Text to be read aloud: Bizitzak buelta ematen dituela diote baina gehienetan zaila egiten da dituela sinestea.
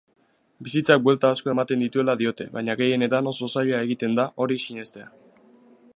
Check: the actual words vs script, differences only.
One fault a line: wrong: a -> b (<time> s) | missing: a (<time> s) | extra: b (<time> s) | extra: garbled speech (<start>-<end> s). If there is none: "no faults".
extra: asko (1.4 s)
extra: oso (3.3 s)
wrong: dituela -> hori (4.5 s)